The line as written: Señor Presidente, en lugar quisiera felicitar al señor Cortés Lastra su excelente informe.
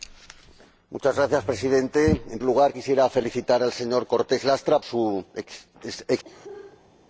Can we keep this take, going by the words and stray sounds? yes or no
no